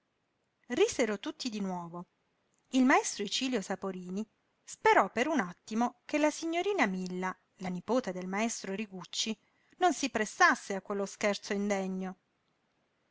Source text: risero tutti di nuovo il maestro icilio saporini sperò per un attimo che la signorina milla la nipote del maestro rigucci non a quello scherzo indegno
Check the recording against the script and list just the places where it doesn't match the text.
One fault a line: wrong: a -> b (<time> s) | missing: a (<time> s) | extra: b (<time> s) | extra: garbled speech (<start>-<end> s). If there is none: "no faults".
extra: si prestasse (9.9 s)